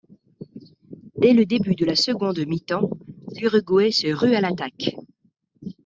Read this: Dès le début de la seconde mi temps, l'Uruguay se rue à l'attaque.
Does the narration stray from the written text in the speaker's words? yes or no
no